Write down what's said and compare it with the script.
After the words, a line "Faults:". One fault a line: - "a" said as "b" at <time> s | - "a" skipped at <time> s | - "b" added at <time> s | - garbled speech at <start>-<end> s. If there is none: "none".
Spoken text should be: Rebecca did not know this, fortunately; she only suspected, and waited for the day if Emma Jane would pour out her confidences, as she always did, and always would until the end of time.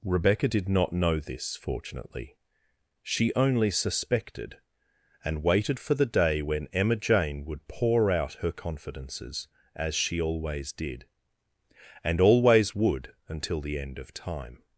Rebecca did not know this, fortunately; she only suspected, and waited for the day when Emma Jane would pour out her confidences, as she always did, and always would until the end of time.
Faults:
- "if" said as "when" at 6.4 s